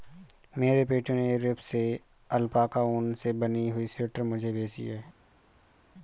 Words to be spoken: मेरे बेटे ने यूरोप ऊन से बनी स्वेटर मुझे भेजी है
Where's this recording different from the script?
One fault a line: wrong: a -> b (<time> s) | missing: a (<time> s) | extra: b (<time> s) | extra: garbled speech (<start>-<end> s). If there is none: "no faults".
extra: से अल्पाका (1.6 s)
extra: हुई (3.7 s)